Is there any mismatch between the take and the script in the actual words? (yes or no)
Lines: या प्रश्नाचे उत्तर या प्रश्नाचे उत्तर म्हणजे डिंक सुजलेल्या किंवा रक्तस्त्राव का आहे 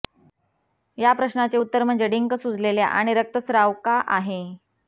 yes